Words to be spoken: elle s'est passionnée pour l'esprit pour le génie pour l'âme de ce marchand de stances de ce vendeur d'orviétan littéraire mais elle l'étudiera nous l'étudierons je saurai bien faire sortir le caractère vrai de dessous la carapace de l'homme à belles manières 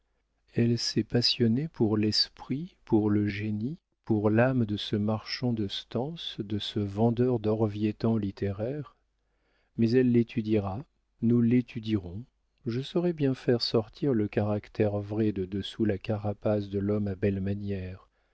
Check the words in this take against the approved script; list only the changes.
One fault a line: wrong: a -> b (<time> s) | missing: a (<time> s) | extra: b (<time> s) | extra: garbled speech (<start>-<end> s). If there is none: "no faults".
no faults